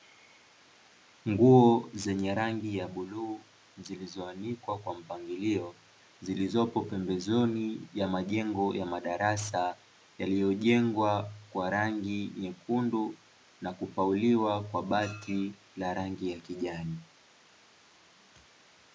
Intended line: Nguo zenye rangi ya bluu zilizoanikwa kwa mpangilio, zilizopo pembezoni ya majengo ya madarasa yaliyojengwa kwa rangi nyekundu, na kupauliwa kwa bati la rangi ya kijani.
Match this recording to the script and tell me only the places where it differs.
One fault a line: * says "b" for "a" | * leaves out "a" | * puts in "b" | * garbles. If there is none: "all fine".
all fine